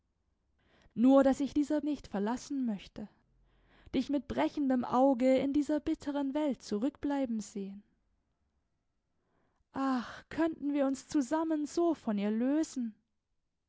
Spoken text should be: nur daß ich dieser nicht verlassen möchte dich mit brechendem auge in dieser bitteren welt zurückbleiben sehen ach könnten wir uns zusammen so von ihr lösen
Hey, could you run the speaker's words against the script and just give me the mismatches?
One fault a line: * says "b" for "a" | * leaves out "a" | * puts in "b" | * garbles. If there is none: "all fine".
all fine